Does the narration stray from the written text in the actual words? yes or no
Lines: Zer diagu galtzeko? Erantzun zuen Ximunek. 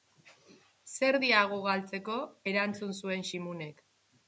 no